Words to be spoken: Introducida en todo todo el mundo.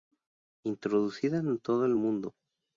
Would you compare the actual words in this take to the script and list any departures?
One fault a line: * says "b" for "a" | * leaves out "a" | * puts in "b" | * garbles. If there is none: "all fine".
* leaves out "todo"